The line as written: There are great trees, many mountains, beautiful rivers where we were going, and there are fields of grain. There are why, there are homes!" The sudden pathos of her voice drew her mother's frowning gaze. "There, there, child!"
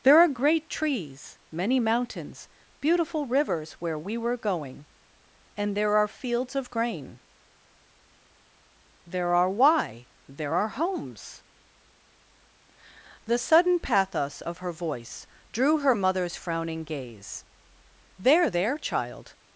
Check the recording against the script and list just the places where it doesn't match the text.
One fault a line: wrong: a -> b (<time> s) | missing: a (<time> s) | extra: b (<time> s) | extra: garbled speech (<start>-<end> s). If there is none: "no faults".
no faults